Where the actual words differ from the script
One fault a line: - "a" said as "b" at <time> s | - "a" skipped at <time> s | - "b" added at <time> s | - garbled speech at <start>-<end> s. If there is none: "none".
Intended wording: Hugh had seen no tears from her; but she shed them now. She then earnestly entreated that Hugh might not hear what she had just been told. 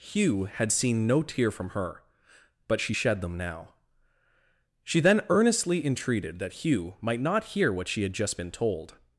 - "tears" said as "tear" at 1.2 s